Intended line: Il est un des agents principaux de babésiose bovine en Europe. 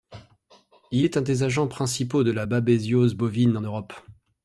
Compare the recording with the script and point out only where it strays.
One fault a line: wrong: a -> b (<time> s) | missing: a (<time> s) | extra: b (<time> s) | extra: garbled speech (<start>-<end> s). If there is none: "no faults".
extra: la (2.3 s)